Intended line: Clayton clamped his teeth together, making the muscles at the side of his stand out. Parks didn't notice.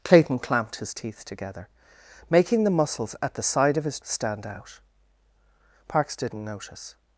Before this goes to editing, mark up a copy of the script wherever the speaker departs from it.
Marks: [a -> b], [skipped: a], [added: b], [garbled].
Clayton clamped his teeth together, making the muscles at the side of his stand out. Parks didn't notice.